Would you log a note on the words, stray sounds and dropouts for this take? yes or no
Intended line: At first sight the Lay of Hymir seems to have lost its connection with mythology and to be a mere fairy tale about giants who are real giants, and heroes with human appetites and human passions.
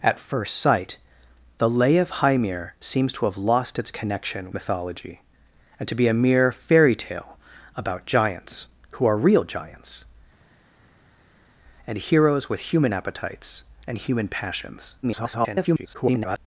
yes